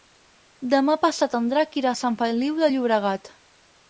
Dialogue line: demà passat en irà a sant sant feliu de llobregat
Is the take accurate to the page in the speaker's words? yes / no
no